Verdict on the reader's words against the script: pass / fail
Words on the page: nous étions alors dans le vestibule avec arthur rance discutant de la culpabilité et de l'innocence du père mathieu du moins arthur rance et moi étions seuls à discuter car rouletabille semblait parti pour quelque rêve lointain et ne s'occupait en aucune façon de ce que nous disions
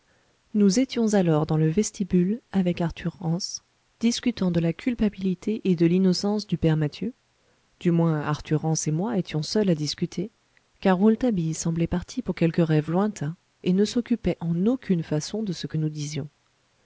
pass